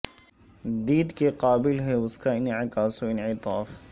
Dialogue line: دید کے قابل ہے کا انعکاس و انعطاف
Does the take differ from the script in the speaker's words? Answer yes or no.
yes